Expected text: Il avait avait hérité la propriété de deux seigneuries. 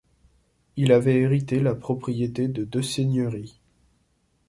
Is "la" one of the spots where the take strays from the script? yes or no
no